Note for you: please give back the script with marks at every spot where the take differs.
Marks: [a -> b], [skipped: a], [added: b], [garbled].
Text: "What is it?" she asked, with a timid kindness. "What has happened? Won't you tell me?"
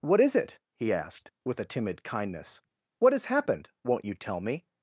"What is it?" [she -> he] asked, with a timid kindness. "What has happened? Won't you tell me?"